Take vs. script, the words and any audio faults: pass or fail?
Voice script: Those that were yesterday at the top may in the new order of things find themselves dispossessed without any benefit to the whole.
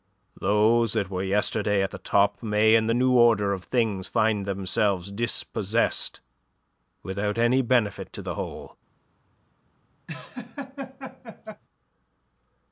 fail